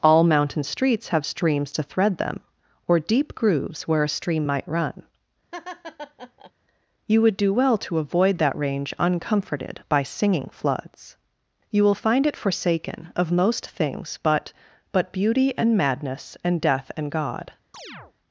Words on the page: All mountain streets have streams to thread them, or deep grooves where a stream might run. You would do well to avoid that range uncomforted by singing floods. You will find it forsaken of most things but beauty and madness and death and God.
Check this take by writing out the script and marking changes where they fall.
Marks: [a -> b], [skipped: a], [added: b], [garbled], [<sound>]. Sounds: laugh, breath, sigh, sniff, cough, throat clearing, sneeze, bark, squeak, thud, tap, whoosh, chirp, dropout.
All mountain streets have streams to thread them, or deep grooves where a stream might run. [laugh] You would do well to avoid that range uncomforted by singing floods. You will find it forsaken of most things but [added: but] beauty and madness and death and God. [chirp]